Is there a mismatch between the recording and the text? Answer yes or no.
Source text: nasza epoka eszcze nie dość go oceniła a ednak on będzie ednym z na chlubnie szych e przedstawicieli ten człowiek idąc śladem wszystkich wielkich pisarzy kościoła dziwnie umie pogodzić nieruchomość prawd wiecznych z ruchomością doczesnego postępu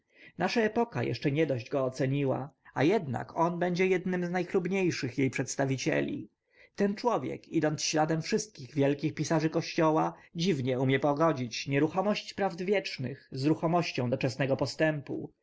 no